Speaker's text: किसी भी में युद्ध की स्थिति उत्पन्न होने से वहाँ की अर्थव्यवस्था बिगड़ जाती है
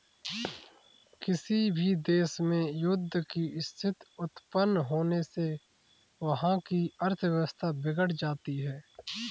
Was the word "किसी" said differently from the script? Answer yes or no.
no